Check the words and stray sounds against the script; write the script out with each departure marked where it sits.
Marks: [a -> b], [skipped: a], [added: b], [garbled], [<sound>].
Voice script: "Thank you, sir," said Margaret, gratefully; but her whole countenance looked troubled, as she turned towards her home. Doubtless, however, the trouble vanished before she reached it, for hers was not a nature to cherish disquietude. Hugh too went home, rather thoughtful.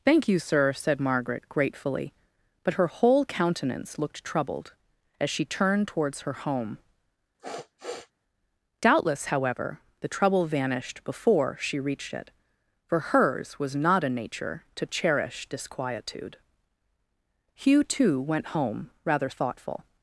"Thank you, sir," said Margaret, gratefully; but her whole countenance looked troubled, as she turned towards her home. [sniff] Doubtless, however, the trouble vanished before she reached it, for hers was not a nature to cherish disquietude. Hugh too went home, rather thoughtful.